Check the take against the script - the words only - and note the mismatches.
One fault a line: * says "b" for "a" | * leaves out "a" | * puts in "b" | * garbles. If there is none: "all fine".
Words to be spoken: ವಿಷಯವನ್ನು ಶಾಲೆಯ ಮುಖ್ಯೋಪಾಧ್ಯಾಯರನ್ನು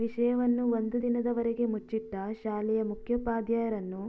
* puts in "ಒಂದು ದಿನದವರೆಗೆ ಮುಚ್ಚಿಟ್ಟ"